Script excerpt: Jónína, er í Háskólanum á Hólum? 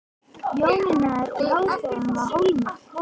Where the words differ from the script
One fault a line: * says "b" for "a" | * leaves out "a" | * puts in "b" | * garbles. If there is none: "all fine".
all fine